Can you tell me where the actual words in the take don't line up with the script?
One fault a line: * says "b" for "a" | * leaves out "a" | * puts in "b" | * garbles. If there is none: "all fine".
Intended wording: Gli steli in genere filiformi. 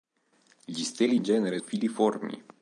all fine